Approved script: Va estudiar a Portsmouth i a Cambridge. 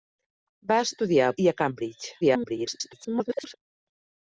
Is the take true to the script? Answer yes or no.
no